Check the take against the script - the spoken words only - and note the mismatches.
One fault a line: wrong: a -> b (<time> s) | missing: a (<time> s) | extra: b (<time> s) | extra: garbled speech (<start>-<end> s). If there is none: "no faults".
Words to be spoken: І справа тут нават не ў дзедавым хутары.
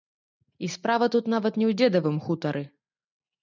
no faults